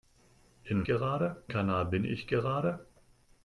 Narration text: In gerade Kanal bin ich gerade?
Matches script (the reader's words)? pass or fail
pass